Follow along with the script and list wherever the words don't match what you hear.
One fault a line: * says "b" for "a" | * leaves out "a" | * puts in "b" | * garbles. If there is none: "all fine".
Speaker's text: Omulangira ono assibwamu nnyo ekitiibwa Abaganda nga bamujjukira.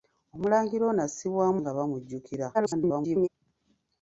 * leaves out "nnyo ekitiibwa Abaganda"
* garbles